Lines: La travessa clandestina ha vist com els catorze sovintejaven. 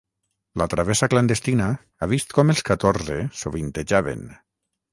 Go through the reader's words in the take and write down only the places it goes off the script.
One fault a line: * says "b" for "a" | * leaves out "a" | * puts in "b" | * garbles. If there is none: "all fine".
all fine